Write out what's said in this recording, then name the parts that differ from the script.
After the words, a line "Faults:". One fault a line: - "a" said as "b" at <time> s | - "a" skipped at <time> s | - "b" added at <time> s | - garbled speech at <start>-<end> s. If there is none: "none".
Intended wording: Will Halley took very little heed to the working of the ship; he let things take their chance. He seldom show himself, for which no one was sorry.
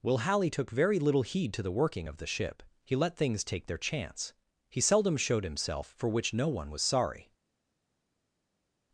Will Halley took very little heed to the working of the ship; he let things take their chance. He seldom showed himself, for which no one was sorry.
Faults:
- "show" said as "showed" at 5.2 s